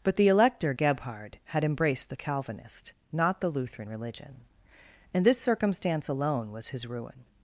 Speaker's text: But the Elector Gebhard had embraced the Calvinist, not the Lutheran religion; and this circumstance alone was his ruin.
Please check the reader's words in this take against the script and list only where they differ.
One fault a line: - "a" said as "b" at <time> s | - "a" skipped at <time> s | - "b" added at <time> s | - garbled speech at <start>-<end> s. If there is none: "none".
none